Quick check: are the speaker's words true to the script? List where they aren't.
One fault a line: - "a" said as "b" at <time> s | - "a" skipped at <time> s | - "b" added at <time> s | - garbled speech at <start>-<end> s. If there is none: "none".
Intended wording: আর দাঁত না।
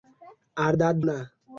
none